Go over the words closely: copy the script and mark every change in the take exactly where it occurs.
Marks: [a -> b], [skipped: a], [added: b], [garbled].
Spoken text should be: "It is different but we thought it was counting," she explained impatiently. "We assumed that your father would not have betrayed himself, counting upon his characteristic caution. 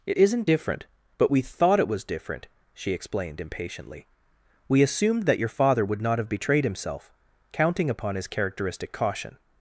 "It [is -> isn't] different but we thought it was [counting," -> different] she explained impatiently. "We assumed that your father would not have betrayed himself, counting upon his characteristic caution.